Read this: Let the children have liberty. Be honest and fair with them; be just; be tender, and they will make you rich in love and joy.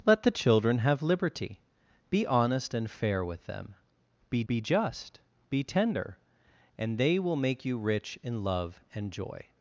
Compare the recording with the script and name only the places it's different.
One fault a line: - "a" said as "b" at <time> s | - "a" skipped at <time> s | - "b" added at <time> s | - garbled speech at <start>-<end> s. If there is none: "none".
- "be" added at 4.5 s